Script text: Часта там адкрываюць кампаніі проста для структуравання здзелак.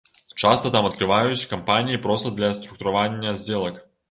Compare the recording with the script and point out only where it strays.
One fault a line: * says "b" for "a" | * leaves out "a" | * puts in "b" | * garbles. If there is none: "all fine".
all fine